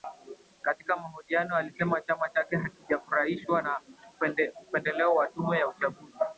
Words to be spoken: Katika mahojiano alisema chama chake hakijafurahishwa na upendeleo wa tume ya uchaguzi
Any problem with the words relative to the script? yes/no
no